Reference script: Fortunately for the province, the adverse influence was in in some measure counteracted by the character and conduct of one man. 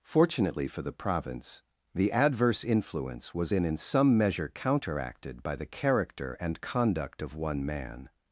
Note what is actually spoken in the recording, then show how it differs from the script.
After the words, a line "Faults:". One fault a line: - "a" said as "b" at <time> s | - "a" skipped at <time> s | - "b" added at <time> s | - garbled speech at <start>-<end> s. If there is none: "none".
Fortunately for the province, the adverse influence was in in some measure counteracted by the character and conduct of one man.
Faults:
none